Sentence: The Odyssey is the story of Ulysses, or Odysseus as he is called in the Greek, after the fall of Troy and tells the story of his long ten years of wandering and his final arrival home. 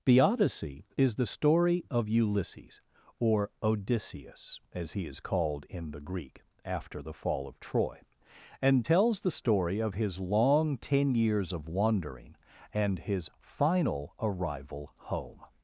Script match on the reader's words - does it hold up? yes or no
yes